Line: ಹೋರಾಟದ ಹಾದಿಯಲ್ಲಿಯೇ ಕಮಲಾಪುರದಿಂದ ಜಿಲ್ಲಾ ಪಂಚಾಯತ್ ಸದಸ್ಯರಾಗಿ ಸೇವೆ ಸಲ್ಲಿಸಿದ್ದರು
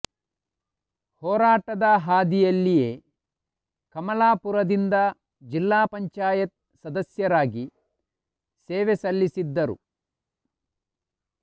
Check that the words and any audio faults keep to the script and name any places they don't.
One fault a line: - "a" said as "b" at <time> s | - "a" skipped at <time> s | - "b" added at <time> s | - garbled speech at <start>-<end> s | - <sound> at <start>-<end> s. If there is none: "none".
none